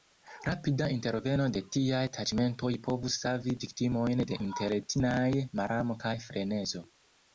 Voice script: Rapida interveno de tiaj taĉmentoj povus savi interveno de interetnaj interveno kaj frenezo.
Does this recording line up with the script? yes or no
no